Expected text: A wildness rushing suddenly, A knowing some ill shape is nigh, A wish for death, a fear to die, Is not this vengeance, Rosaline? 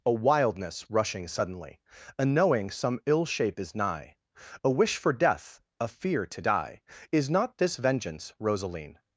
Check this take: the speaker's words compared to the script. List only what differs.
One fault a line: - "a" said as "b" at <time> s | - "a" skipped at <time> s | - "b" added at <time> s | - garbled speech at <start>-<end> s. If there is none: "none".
none